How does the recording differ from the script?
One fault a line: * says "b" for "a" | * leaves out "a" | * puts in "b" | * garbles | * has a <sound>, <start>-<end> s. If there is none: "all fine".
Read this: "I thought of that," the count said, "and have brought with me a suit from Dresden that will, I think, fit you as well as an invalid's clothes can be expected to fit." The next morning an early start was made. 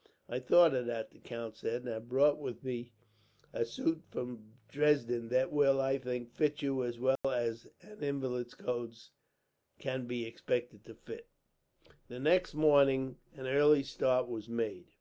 * has a dropout, 7.2-7.2 s